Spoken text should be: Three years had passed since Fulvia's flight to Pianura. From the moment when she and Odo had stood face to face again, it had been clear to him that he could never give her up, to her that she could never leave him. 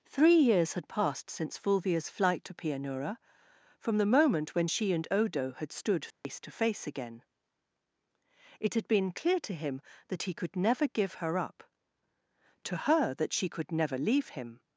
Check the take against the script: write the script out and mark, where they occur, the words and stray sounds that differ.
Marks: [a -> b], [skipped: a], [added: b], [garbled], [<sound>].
Three years had passed since Fulvia's flight to Pianura. From the moment when she and Odo had stood face [dropout] to face again, it had been clear to him that he could never give her up, to her that she could never leave him.